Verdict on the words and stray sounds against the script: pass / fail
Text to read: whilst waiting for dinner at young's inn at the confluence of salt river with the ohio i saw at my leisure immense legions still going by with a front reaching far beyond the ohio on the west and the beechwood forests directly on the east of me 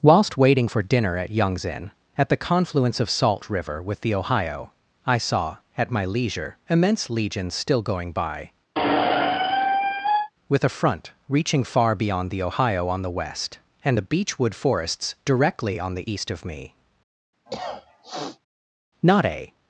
fail